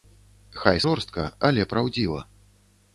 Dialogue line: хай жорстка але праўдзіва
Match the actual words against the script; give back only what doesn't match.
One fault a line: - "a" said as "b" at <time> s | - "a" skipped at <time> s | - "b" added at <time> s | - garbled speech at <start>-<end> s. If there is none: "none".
none